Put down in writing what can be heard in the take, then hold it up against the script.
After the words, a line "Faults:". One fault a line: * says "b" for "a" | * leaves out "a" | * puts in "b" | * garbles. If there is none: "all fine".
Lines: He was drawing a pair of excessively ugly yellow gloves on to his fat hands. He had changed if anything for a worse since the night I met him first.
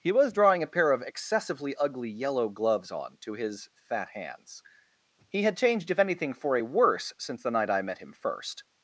He was drawing a pair of excessively ugly yellow gloves on to his fat hands. He had changed if anything for a worse since the night I met him first.
Faults:
all fine